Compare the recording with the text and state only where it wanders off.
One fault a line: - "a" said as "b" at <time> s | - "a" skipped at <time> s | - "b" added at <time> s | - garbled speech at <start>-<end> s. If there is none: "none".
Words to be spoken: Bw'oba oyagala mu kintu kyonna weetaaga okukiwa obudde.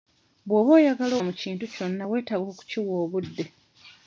none